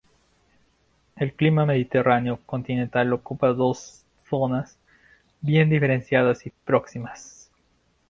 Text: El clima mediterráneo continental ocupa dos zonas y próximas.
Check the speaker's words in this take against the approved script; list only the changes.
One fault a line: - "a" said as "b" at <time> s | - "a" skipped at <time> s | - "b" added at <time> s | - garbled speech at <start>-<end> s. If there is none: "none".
- "bien diferenciadas" added at 5.4 s